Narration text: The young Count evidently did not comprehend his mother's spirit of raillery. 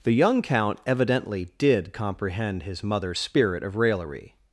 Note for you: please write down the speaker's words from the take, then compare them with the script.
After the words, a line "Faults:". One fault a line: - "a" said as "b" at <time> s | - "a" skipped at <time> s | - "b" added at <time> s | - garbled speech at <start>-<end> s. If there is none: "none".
The young Count evidently did comprehend his mother's spirit of raillery.
Faults:
- "not" skipped at 1.9 s